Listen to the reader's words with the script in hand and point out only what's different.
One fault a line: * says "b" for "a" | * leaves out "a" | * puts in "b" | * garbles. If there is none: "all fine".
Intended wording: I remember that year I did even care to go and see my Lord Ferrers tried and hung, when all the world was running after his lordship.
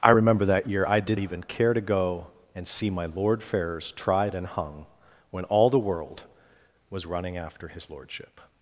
all fine